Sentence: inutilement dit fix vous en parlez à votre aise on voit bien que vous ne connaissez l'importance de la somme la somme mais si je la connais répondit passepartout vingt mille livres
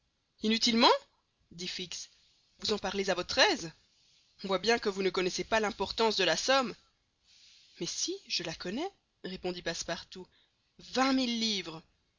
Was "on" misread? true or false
false